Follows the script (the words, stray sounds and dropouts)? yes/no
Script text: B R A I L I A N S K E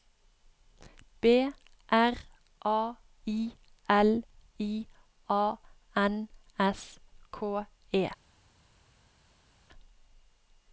yes